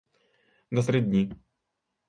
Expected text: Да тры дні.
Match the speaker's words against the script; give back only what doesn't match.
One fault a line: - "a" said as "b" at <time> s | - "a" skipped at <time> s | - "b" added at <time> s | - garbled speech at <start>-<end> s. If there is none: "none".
none